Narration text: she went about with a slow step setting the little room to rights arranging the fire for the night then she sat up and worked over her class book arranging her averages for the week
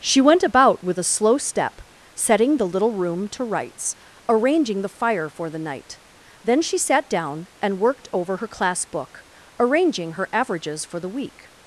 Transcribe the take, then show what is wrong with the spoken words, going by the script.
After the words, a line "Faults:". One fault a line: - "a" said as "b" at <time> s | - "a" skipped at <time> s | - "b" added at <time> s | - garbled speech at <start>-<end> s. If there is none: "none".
she went about with a slow step setting the little room to rights arranging the fire for the night then she sat down and worked over her class book arranging her averages for the week
Faults:
- "up" said as "down" at 7.1 s